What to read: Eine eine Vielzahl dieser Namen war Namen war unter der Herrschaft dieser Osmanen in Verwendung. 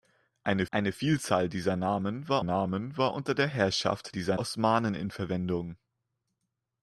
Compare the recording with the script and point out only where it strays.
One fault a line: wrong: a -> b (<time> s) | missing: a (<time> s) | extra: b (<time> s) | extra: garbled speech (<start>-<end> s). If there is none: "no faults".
no faults